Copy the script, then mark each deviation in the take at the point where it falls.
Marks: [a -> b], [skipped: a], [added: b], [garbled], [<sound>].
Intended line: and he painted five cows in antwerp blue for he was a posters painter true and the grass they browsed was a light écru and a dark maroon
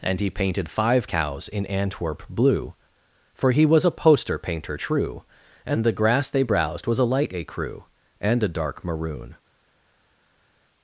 and he painted five cows in antwerp blue for he was a [posters -> poster] painter true and the grass they browsed was a light écru and a dark maroon